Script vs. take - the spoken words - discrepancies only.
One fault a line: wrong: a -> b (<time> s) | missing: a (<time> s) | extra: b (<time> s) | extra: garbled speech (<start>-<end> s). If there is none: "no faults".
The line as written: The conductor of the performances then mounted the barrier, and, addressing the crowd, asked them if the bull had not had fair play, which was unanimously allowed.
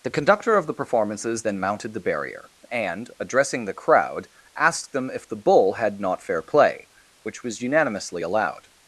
missing: had (6.2 s)